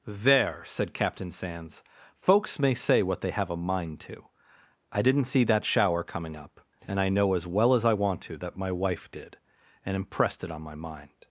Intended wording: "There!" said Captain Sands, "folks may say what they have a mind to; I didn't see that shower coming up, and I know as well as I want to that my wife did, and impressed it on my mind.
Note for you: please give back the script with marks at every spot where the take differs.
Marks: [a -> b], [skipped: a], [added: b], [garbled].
"There!" said Captain Sands, "folks may say what they have a mind to; I didn't see that shower coming up, and I know as well as I want to that my wife did, and impressed it on my mind.